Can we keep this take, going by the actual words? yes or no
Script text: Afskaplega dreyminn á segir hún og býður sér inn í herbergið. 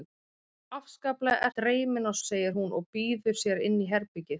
yes